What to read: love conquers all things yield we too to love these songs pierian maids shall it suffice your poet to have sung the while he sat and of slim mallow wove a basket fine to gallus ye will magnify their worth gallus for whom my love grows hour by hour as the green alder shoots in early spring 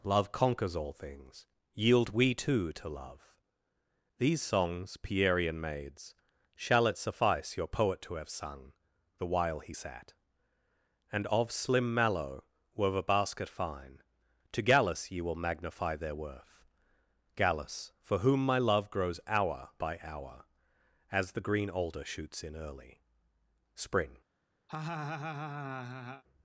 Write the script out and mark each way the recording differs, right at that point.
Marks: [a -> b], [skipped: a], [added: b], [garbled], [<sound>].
love conquers all things yield we too to love these songs pierian maids shall it suffice your poet to have sung the while he sat and of slim mallow wove a basket fine to gallus ye will magnify their worth gallus for whom my love grows hour by hour as the green alder shoots in early spring [laugh]